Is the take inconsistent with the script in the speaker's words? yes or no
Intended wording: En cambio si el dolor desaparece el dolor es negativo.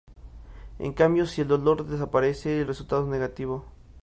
yes